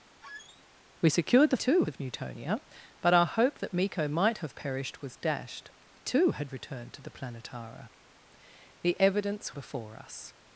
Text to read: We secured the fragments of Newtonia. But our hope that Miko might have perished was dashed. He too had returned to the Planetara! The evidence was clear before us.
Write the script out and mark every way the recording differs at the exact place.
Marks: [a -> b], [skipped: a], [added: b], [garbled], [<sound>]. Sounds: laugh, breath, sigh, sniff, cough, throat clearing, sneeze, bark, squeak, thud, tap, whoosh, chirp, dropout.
[squeak] We secured the [fragments -> too] of Newtonia. But our hope that Miko might have perished was dashed. [skipped: He] too had returned to the Planetara! The evidence [skipped: was clear] before us.